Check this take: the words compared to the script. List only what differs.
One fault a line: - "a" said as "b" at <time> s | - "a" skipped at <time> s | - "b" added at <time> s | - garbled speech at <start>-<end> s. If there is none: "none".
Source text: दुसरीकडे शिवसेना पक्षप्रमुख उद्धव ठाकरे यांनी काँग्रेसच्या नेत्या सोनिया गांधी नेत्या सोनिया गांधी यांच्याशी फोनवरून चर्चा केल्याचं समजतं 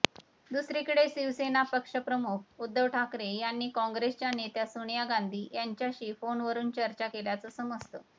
- "नेत्या सोनिया गांधी" skipped at 5.5 s